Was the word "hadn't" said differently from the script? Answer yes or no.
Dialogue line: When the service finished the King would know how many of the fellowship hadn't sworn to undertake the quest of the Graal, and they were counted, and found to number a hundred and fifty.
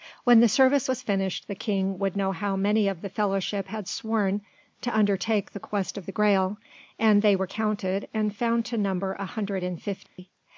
yes